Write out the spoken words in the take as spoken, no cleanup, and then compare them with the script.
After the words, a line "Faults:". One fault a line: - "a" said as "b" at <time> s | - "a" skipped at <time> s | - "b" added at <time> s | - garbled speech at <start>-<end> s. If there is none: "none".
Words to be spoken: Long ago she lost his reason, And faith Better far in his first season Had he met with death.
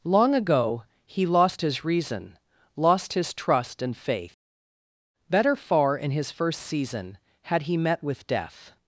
Long ago he lost his reason, Lost his trust and faith Better far in his first season Had he met with death.
Faults:
- "she" said as "he" at 1.1 s
- "Lost his trust" added at 2.8 s